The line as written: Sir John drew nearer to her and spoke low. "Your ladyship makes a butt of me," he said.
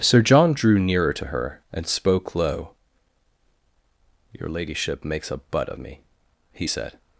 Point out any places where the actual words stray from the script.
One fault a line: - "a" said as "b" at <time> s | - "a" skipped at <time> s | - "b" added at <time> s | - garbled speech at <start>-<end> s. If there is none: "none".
none